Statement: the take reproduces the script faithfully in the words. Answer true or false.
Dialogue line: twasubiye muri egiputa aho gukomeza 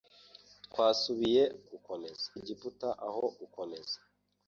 false